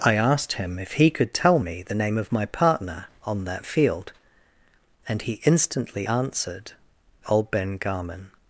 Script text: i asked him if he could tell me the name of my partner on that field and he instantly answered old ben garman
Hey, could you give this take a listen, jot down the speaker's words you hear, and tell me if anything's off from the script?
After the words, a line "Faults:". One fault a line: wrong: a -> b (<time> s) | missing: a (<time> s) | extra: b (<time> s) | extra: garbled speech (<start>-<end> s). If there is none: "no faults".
i asked him if he could tell me the name of my partner on that field and he instantly answered old ben garman
Faults:
no faults